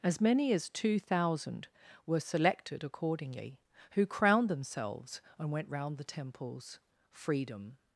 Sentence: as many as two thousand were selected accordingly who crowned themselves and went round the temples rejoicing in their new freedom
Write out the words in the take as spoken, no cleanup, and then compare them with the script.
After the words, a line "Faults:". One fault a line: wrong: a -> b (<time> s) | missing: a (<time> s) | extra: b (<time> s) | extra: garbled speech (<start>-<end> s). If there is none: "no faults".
as many as two thousand were selected accordingly who crowned themselves and went round the temples freedom
Faults:
missing: rejoicing in their new (6.8 s)